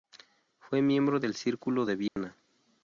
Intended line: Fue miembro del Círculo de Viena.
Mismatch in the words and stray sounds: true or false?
true